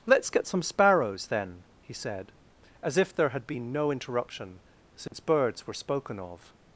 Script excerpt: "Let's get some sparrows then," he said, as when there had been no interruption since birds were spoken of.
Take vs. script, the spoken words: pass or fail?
fail